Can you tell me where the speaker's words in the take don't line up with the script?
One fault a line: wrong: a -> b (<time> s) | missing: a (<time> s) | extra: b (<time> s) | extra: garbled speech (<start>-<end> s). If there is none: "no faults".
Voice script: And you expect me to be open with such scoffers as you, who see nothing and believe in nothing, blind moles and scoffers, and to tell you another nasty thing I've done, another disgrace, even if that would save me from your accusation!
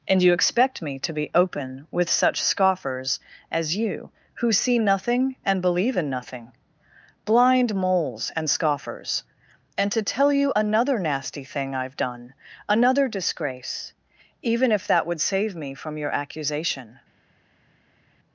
no faults